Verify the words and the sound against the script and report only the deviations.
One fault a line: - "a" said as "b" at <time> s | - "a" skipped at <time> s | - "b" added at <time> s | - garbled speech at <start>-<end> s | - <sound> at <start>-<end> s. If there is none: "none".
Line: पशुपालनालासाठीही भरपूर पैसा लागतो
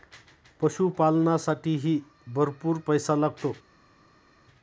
none